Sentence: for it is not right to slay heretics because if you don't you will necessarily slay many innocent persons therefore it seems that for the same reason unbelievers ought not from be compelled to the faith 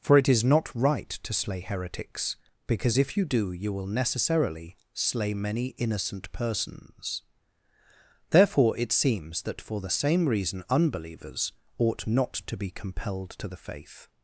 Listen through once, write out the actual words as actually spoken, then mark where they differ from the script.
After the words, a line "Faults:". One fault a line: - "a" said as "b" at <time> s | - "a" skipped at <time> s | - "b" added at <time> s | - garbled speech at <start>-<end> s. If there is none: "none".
for it is not right to slay heretics because if you do you will necessarily slay many innocent persons therefore it seems that for the same reason unbelievers ought not to be compelled to the faith
Faults:
- "don't" said as "do" at 3.2 s
- "from" said as "to" at 12.3 s